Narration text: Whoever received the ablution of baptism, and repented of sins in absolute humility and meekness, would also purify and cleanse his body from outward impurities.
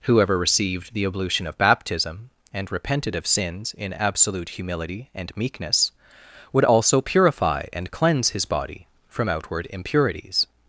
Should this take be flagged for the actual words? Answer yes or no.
no